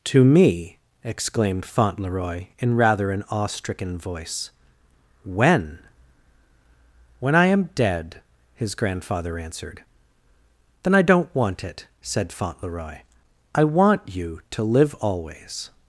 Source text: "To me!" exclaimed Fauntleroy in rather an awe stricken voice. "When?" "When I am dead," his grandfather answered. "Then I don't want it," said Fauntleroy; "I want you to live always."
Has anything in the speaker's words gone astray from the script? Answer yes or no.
no